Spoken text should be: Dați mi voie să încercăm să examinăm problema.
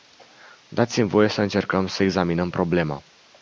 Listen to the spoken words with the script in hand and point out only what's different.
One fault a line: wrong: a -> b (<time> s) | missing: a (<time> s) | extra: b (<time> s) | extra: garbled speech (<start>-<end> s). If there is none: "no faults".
no faults